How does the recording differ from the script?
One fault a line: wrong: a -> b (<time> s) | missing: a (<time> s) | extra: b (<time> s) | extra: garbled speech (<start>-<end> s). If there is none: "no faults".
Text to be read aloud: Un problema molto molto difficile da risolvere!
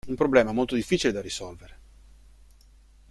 missing: molto (0.7 s)